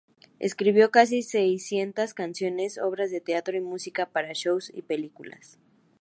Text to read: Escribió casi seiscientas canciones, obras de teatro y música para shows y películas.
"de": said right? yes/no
yes